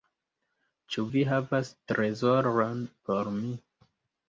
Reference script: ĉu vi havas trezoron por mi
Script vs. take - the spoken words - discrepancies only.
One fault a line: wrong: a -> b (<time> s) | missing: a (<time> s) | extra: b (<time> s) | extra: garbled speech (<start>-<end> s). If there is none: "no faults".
no faults